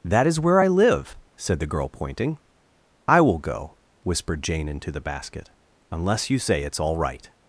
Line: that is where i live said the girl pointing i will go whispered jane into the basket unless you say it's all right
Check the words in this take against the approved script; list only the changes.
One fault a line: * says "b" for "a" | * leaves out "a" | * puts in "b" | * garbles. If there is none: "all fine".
all fine